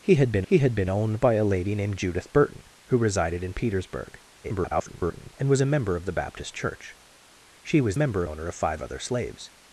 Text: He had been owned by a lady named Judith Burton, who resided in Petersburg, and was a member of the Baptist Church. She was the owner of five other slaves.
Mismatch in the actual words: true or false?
true